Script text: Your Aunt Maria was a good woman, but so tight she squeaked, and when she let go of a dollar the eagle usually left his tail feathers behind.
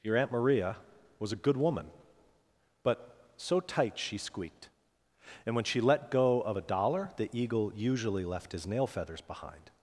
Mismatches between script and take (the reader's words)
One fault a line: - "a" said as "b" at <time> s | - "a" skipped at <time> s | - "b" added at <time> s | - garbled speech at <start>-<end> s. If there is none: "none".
- "tail" said as "nail" at 8.6 s